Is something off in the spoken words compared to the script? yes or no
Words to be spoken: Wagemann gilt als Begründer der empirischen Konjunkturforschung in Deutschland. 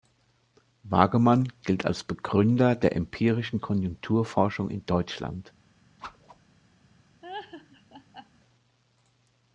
no